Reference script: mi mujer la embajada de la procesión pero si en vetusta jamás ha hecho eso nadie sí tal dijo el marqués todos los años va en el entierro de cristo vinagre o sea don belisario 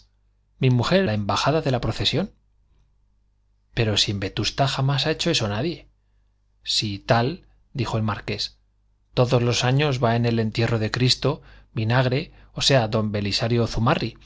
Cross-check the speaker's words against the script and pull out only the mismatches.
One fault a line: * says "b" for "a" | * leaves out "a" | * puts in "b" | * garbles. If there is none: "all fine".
all fine